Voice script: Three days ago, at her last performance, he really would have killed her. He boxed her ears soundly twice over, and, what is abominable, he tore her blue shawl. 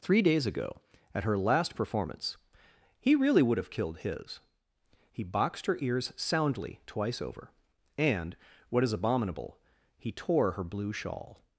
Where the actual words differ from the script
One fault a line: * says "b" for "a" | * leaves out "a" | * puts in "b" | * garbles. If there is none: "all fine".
* says "his" for "her"